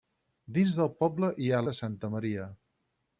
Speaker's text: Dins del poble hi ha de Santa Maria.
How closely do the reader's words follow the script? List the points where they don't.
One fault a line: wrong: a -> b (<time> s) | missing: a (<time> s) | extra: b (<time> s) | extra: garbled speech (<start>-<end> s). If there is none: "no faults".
no faults